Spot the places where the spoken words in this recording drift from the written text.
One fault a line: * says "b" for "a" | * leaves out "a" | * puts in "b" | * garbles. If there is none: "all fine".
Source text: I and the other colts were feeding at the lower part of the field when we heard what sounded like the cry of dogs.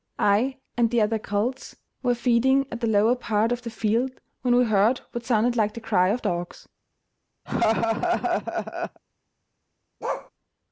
all fine